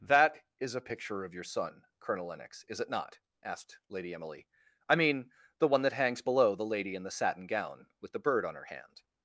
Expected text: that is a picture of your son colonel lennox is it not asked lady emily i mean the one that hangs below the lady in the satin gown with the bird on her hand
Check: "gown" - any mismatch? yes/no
no